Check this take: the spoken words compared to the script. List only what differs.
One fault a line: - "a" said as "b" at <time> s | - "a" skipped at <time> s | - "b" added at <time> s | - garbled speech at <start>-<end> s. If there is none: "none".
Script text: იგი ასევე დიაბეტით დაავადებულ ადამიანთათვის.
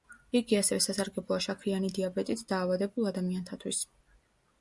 - "სასარგებლოა შაქრიანი" added at 0.8 s